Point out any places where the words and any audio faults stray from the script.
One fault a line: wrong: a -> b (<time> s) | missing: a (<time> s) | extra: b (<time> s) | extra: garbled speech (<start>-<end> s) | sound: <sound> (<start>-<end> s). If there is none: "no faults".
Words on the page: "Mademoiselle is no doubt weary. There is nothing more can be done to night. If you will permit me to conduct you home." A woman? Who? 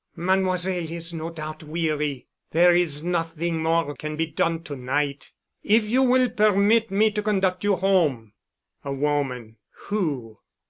no faults